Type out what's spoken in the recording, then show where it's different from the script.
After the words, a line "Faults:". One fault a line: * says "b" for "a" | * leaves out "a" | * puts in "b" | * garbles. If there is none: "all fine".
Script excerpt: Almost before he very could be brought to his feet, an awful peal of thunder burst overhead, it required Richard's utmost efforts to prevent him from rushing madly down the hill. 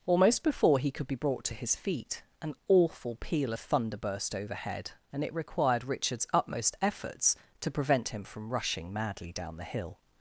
Almost before he could be brought to his feet, an awful peal of thunder burst overhead, and it required Richard's utmost efforts to prevent him from rushing madly down the hill.
Faults:
* leaves out "very"
* puts in "and"